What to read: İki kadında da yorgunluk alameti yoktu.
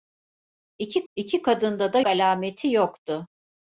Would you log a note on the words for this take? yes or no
yes